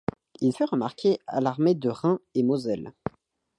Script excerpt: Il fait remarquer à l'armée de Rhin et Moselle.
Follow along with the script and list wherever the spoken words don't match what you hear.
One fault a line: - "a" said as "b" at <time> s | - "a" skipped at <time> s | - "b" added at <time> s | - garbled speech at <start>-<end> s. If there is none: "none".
none